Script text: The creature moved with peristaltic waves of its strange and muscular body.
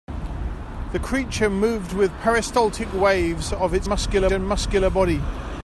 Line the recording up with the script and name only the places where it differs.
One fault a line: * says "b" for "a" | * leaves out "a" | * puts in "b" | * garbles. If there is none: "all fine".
* says "muscular" for "strange"